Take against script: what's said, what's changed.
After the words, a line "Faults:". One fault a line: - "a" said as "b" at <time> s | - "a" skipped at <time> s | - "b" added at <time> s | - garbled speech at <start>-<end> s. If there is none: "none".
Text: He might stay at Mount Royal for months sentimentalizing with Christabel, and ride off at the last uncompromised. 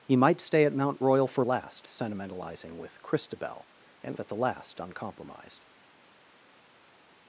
He might stay at Mount Royal for last sentimentalizing with Christabel, and at the last uncompromised.
Faults:
- "months" said as "last" at 1.4 s
- "ride off" skipped at 4.2 s